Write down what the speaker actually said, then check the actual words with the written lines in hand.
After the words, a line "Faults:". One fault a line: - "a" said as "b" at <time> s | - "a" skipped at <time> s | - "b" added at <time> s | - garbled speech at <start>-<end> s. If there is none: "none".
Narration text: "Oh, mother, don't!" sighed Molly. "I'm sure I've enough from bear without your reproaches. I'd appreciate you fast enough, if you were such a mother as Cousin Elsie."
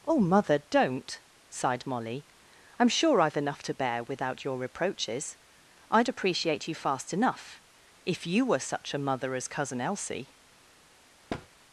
"Oh, mother, don't!" sighed Molly. "I'm sure I've enough to bear without your reproaches. I'd appreciate you fast enough, if you were such a mother as Cousin Elsie."
Faults:
- "from" said as "to" at 3.6 s